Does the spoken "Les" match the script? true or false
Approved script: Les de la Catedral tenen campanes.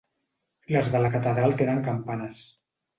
true